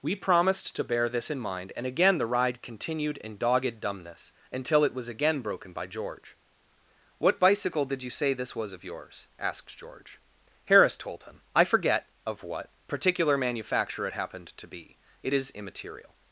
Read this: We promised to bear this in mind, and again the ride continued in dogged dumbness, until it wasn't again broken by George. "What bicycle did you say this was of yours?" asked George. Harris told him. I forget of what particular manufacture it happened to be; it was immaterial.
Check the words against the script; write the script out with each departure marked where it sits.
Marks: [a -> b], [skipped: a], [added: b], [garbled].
We promised to bear this in mind, and again the ride continued in dogged dumbness, until it [wasn't -> was] again broken by George. "What bicycle did you say this was of yours?" asked George. Harris told him. I forget of what particular manufacture it happened to be; it [was -> is] immaterial.